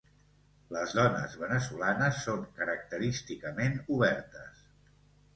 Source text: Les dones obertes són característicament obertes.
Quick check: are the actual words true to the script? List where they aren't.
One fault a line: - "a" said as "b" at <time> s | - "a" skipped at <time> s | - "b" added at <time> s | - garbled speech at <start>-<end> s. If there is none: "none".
- "obertes" said as "veneçolanes" at 1.4 s